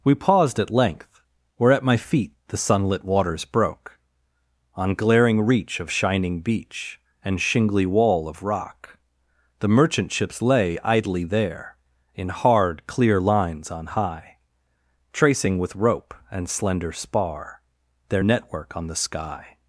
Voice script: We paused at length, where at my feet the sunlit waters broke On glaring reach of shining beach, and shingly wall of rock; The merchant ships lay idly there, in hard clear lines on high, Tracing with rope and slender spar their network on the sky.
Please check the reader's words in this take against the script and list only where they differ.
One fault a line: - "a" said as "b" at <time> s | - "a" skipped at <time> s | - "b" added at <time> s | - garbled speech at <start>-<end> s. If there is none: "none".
none